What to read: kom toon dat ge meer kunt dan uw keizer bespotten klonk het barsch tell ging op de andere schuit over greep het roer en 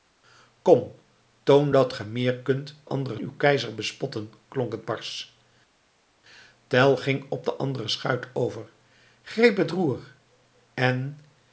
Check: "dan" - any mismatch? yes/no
yes